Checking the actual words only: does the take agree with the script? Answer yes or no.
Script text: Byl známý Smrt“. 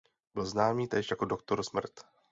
no